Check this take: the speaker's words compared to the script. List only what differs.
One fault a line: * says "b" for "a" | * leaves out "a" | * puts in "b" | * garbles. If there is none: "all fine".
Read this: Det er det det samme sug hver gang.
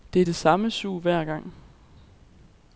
* leaves out "det"